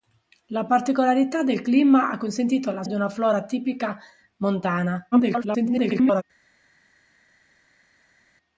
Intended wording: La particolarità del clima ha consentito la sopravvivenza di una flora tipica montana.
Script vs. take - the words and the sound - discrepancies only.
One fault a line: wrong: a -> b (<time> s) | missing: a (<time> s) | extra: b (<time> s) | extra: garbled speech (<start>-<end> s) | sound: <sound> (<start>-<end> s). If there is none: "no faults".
missing: sopravvivenza (2.8 s)
extra: garbled speech (5.1-6.2 s)